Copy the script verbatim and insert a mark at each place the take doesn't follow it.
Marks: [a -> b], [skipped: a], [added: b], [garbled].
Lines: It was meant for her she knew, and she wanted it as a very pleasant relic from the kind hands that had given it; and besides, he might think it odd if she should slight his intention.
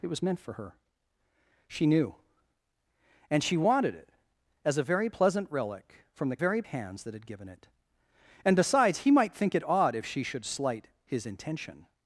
It was meant for her she knew, and she wanted it as a very pleasant relic from the [kind -> very] hands that had given it; and besides, he might think it odd if she should slight his intention.